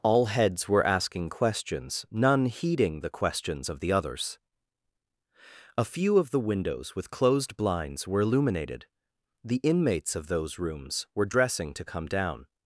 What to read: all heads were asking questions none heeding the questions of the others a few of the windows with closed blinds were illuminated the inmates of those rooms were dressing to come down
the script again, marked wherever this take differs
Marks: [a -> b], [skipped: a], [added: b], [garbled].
all heads were asking questions none heeding the questions of the others a few of the windows with closed blinds were illuminated the inmates of those rooms were dressing to come down